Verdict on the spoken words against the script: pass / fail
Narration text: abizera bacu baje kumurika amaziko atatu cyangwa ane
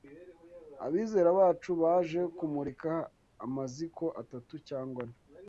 pass